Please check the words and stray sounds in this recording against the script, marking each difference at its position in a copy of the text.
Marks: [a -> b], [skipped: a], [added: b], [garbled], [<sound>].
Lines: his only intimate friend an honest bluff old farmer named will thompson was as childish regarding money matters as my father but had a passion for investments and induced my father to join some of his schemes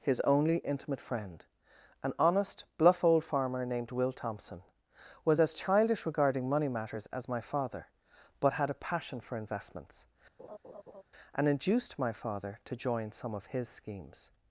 his only intimate friend an honest bluff old farmer named will thompson was as childish regarding money matters as my father but had a passion for investments [laugh] and induced my father to join some of his schemes